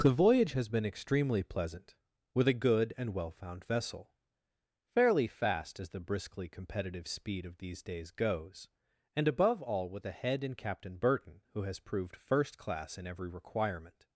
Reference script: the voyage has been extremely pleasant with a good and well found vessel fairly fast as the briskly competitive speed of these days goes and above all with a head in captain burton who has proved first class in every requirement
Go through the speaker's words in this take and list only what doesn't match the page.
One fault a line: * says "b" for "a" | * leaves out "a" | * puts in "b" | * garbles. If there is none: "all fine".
all fine